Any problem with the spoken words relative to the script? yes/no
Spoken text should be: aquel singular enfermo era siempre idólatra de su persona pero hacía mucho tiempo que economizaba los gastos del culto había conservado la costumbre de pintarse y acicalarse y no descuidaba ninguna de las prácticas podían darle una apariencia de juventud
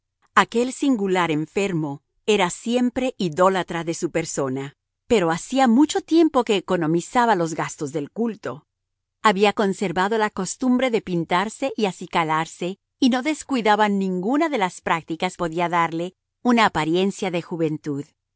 no